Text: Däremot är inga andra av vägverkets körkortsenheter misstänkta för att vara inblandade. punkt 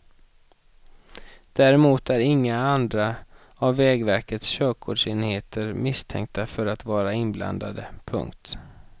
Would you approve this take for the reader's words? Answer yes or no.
yes